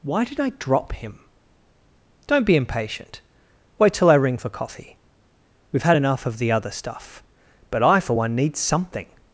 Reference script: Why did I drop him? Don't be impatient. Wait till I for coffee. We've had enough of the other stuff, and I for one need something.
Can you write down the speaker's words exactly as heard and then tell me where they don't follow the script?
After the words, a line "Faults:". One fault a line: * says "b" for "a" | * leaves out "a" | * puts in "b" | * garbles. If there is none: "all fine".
Why did I drop him? Don't be impatient. Wait till I ring for coffee. We've had enough of the other stuff, but I for one need something.
Faults:
* puts in "ring"
* says "but" for "and"